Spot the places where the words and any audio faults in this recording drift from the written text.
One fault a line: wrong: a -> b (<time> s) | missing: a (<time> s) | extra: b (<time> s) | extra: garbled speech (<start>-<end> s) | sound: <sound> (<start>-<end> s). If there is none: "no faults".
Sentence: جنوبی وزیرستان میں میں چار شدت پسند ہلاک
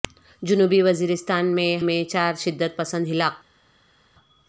no faults